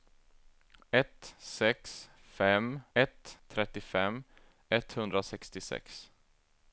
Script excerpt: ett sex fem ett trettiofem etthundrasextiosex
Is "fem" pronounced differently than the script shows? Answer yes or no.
no